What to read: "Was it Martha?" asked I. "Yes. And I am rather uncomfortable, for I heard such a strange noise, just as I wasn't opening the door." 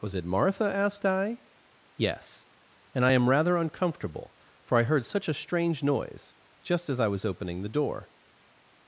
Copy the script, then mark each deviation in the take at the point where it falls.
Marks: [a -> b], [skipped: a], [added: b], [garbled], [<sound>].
"Was it Martha?" asked I. "Yes. And I am rather uncomfortable, for I heard such a strange noise, just as I [wasn't -> was] opening the door."